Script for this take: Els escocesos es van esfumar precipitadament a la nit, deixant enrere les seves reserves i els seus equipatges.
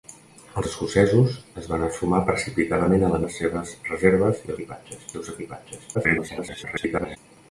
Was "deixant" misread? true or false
true